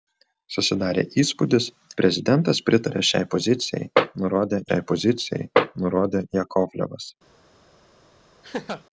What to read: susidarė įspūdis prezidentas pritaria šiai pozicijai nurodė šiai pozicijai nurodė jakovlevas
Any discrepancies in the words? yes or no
no